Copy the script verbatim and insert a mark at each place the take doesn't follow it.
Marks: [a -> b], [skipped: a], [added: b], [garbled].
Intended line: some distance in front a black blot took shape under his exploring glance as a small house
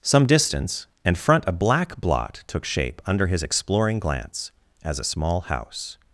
some distance [in -> and] front a black blot took shape under his exploring glance as a small house